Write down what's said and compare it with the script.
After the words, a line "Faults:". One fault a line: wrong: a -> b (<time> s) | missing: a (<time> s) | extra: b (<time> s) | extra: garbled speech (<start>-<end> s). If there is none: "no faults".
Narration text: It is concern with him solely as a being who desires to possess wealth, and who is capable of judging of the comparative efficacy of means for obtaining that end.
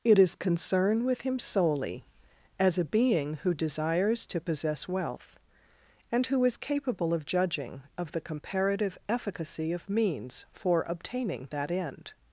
It is concern with him solely as a being who desires to possess wealth, and who is capable of judging of the comparative efficacy of means for obtaining that end.
Faults:
no faults